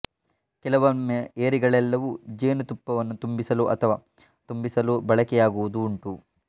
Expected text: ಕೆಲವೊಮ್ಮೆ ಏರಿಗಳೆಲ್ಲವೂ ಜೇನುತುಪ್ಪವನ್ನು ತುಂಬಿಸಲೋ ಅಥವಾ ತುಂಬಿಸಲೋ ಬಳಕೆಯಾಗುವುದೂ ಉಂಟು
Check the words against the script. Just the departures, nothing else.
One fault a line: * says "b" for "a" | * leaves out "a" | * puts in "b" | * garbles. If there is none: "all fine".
all fine